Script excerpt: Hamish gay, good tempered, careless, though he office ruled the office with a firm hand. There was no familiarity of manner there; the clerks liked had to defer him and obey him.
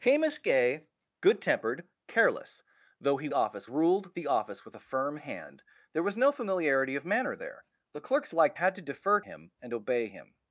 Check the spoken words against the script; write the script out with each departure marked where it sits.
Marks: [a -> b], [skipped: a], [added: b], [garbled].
Hamish gay, good tempered, careless, though he office ruled the office with a firm hand. There was no familiarity of manner there; the clerks liked had to defer him and obey him.